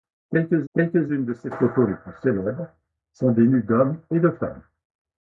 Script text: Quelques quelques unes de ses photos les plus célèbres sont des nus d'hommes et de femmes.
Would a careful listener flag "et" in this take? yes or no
no